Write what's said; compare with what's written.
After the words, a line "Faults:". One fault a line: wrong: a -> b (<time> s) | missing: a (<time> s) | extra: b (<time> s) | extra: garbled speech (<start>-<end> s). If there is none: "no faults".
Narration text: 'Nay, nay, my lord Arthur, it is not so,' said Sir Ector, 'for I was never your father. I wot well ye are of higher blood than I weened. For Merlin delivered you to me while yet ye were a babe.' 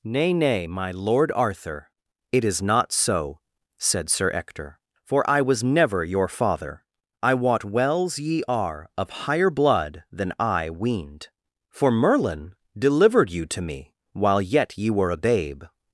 'Nay, nay, my lord Arthur, it is not so,' said Sir Ector, 'for I was never your father. I wot wells ye are of higher blood than I weened. For Merlin delivered you to me while yet ye were a babe.'
Faults:
wrong: well -> wells (7.6 s)